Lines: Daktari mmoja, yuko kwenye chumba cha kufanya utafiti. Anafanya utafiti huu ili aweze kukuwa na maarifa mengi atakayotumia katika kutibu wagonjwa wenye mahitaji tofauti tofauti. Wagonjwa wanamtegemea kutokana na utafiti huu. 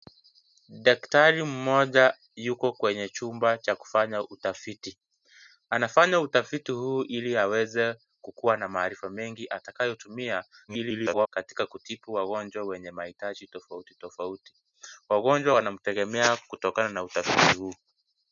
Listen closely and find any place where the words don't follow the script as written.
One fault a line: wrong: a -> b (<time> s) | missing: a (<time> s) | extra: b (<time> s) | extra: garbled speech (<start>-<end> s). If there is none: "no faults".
extra: garbled speech (10.7-11.3 s)